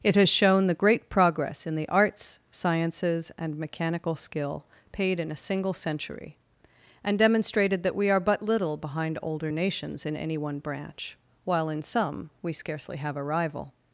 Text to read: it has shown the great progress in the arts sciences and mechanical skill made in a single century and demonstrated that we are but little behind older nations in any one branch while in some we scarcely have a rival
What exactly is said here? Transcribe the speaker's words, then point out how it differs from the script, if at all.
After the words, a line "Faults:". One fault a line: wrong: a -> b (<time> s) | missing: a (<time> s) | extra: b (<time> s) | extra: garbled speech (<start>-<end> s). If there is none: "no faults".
it has shown the great progress in the arts sciences and mechanical skill paid in a single century and demonstrated that we are but little behind older nations in any one branch while in some we scarcely have a rival
Faults:
wrong: made -> paid (4.9 s)